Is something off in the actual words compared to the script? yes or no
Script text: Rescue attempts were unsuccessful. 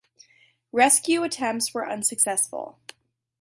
no